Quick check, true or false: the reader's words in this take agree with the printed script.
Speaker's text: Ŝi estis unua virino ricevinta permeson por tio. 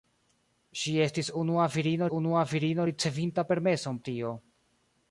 false